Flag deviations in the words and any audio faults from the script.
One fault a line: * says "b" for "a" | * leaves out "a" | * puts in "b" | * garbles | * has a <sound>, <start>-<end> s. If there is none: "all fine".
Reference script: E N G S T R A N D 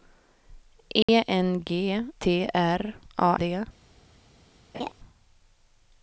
* has a dropout, 1.0-1.1 s
* leaves out "S"
* leaves out "N"
* has a laugh, 4.7-4.9 s